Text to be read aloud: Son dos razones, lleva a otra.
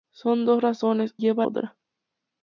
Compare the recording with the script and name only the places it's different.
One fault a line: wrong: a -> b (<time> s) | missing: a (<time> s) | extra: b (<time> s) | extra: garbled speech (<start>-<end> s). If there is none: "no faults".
no faults